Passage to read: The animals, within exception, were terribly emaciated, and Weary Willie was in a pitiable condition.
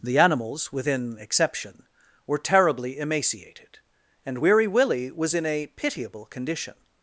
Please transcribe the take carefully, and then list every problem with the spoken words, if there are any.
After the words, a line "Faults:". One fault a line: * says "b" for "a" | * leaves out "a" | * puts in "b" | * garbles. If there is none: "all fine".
The animals, within exception, were terribly emaciated, and Weary Willie was in a pitiable condition.
Faults:
all fine